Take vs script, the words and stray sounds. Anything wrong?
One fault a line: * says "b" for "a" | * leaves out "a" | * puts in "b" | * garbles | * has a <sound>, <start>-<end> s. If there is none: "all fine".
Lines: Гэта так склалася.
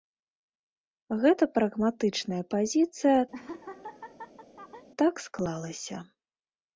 * puts in "прагматычная пазіцыя"
* has a laugh, 3.3-4.9 s